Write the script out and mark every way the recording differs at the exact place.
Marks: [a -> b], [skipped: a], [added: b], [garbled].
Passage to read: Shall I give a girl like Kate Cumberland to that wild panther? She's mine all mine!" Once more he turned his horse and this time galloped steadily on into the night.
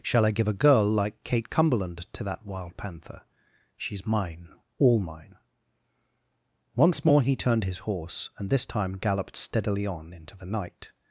Shall I give a girl like Kate Cumberland to that wild panther? She's mine all mine!" Once more he turned his horse and this time galloped steadily on into the night.